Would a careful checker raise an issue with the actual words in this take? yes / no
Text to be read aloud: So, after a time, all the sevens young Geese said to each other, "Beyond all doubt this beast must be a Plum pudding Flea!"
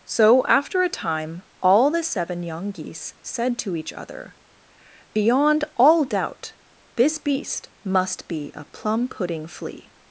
yes